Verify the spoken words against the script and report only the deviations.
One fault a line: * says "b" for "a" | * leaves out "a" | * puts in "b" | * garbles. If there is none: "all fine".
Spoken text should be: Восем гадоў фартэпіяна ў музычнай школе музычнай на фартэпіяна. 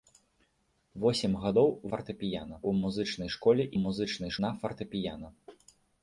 all fine